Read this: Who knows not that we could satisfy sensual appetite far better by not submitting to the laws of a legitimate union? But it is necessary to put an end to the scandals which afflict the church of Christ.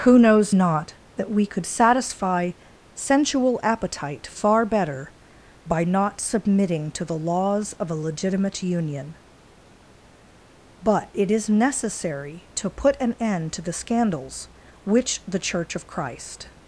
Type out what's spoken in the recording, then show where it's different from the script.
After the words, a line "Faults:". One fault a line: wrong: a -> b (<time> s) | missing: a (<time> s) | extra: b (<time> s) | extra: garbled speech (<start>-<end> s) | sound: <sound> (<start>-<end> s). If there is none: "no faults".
Who knows not that we could satisfy sensual appetite far better by not submitting to the laws of a legitimate union? But it is necessary to put an end to the scandals which the church of Christ.
Faults:
missing: afflict (15.2 s)